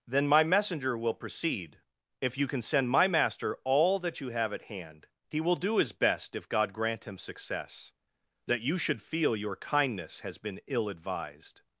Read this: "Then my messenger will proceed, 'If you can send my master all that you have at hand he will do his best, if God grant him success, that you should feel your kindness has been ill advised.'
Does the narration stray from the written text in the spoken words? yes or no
no